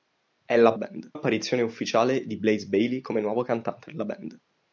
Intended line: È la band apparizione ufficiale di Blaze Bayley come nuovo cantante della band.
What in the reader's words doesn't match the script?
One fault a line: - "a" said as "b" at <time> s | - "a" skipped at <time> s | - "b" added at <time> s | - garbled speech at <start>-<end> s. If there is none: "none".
none